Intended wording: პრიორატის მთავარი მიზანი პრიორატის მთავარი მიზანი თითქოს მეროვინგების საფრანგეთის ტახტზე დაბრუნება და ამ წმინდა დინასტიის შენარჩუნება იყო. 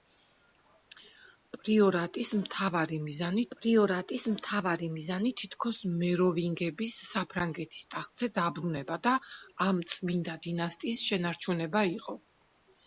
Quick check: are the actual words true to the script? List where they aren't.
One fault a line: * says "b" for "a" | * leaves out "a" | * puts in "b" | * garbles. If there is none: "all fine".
all fine